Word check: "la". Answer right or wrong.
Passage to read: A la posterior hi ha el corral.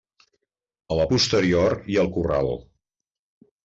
right